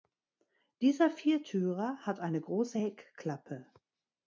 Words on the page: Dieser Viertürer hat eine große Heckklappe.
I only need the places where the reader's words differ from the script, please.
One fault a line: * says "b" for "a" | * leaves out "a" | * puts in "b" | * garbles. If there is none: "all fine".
all fine